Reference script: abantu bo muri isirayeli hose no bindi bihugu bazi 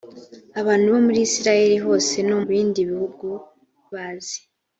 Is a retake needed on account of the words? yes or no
no